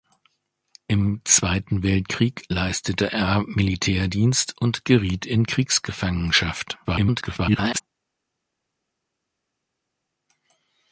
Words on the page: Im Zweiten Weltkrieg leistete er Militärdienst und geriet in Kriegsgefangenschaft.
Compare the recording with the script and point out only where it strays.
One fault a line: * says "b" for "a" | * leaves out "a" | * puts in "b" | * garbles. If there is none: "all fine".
* garbles